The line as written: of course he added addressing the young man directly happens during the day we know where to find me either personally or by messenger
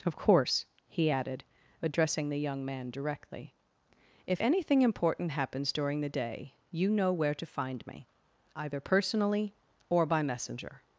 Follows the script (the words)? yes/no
no